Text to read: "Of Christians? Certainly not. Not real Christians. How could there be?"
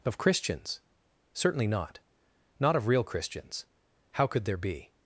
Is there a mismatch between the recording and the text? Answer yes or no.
yes